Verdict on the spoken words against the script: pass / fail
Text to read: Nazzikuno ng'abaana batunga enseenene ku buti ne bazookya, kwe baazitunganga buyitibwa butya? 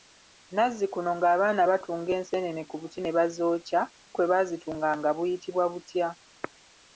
pass